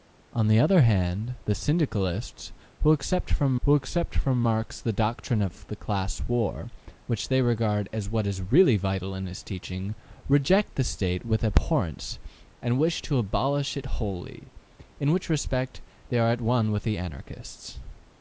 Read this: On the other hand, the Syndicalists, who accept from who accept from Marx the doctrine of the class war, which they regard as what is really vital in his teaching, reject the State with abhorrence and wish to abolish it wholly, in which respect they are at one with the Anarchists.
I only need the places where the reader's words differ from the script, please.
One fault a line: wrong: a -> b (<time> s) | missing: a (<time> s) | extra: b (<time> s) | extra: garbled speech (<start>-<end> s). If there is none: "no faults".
no faults